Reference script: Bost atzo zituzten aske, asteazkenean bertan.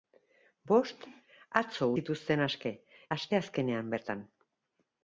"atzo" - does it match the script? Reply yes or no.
yes